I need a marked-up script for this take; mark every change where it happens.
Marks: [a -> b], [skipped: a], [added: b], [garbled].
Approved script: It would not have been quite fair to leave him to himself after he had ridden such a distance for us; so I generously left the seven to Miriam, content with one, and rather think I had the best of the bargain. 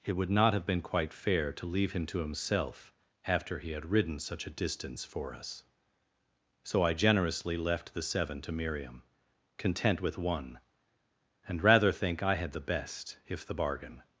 It would not have been quite fair to leave him to himself after he had ridden such a distance for us; so I generously left the seven to Miriam, content with one, and rather think I had the best [of -> if] the bargain.